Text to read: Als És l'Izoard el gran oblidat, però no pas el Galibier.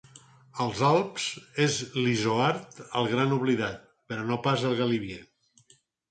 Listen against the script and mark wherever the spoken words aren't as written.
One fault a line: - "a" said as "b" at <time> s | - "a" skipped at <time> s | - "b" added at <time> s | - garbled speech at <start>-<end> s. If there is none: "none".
- "Alps" added at 0.8 s